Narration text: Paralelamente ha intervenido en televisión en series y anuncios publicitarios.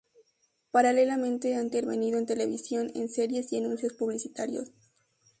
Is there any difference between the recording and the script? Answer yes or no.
no